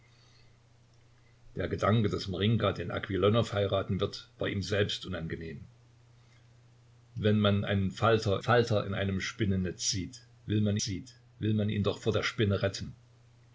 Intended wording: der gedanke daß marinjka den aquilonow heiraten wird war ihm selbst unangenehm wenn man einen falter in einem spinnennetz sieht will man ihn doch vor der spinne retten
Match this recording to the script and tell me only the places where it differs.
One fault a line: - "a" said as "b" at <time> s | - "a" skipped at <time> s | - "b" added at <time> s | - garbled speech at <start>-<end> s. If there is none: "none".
- "falter" added at 8.4 s
- "sieht will man" added at 10.8 s